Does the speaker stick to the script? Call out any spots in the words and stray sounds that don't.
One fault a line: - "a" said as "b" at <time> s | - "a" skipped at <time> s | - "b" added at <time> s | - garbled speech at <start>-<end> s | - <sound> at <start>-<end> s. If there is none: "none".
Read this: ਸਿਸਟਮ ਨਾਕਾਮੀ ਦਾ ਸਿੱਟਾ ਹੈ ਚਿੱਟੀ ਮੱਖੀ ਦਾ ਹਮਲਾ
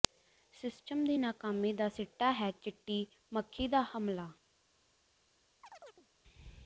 - "ਦੀ" added at 1.1 s
- chirp at 5.6-6.1 s